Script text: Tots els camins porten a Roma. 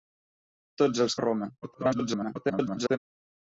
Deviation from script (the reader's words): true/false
true